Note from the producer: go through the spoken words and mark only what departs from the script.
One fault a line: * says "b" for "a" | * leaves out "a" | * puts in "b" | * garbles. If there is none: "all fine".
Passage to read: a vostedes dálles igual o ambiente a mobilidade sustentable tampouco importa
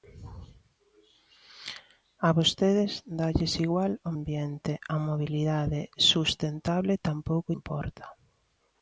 all fine